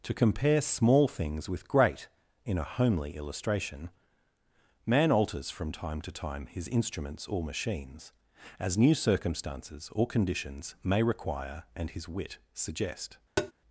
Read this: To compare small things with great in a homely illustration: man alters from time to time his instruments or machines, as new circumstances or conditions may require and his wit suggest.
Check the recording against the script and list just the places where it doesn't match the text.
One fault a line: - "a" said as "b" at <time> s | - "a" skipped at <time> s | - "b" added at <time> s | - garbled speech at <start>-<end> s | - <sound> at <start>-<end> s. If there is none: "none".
- tap at 13.4-13.5 s